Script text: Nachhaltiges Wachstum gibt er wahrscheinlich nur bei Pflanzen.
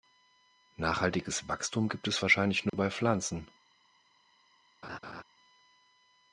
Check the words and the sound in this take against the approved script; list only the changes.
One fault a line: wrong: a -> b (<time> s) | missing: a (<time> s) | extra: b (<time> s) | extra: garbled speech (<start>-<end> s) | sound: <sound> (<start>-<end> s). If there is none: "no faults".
wrong: er -> es (2.1 s)
sound: dropout (2.7-2.7 s)
sound: laugh (4.8-5.2 s)